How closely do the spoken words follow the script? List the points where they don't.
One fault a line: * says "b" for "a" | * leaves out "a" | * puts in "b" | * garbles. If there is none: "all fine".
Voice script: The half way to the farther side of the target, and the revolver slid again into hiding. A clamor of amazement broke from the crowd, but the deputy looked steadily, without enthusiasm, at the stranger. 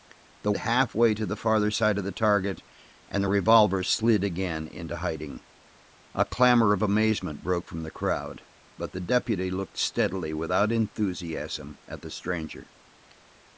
all fine